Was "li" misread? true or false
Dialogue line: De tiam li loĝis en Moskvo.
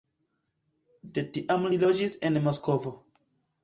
false